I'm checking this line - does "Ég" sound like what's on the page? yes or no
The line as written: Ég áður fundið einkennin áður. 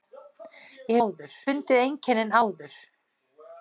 yes